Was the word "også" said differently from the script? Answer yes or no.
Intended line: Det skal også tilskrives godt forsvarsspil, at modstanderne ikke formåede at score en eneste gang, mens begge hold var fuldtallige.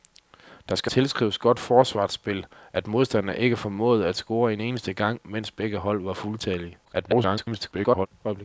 yes